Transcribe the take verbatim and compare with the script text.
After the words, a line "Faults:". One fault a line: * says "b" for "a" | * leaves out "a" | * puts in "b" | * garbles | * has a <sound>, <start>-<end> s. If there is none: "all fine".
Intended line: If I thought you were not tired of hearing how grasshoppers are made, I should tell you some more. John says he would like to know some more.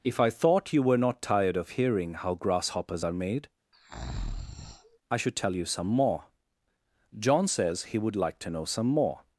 If I thought you were not tired of hearing how grasshoppers are made, I should tell you some more. John says he would like to know some more.
Faults:
* has a breath, 3.7-5.0 s